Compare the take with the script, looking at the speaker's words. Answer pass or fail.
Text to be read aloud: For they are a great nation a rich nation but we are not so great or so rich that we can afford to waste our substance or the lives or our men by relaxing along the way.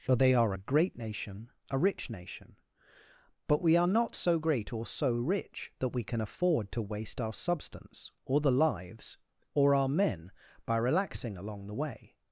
pass